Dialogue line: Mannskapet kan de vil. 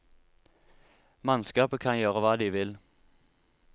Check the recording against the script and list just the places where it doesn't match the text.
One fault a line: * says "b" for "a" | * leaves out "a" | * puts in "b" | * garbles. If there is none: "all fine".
* puts in "gjøre hva"